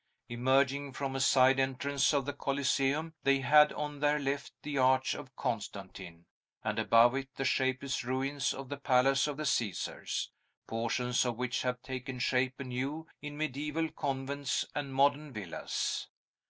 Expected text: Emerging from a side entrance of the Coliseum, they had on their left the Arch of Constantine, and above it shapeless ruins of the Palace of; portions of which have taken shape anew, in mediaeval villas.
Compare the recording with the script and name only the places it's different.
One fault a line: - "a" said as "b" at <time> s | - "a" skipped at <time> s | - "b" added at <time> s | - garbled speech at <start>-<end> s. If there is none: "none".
- "the" added at 7.3 s
- "the Caesars" added at 9.3 s
- "convents and modern" added at 13.9 s